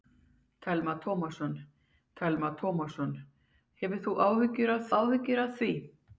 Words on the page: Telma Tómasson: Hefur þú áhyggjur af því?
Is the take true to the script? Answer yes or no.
no